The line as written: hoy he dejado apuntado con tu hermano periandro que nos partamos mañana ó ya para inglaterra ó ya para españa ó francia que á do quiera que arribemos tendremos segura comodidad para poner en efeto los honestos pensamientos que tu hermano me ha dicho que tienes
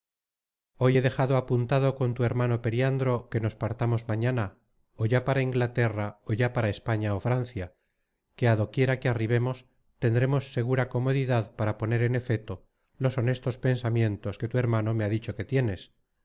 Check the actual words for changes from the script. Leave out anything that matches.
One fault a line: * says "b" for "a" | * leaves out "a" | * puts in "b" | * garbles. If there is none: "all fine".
all fine